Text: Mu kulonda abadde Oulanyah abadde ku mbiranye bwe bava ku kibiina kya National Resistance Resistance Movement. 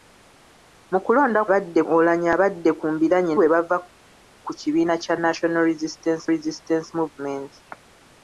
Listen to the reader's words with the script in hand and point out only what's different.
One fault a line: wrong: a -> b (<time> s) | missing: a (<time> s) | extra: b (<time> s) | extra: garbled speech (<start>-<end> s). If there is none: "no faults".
no faults